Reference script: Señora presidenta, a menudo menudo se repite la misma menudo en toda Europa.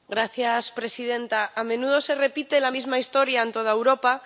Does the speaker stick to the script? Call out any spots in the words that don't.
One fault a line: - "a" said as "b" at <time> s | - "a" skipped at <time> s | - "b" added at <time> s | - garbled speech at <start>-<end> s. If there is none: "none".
- "menudo" skipped at 2.0 s
- "menudo" said as "historia" at 3.0 s